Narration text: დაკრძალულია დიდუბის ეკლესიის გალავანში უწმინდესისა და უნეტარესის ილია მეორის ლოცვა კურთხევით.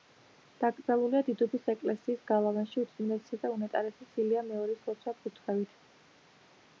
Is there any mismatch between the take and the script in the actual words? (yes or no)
no